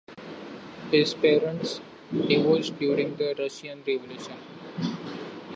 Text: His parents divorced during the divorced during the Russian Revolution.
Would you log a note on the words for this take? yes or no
yes